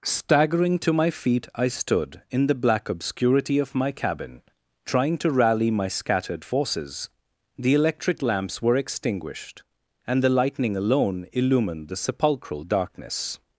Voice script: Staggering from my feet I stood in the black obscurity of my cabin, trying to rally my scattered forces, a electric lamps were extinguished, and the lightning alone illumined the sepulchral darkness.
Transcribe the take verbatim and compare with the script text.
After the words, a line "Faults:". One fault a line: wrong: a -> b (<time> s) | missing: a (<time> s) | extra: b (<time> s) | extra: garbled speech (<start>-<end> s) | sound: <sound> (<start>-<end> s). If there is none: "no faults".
Staggering to my feet I stood in the black obscurity of my cabin, trying to rally my scattered forces, the electric lamps were extinguished, and the lightning alone illumined the sepulchral darkness.
Faults:
wrong: from -> to (0.8 s)
wrong: a -> the (7.6 s)